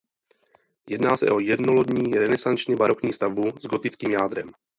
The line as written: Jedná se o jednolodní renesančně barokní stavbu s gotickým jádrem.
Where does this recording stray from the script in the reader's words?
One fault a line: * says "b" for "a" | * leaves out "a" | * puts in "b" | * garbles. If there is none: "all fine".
all fine